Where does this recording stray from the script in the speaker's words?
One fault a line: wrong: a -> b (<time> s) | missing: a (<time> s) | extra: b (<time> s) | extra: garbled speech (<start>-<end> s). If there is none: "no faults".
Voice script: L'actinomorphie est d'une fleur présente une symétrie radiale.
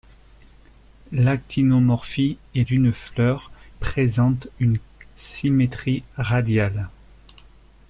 no faults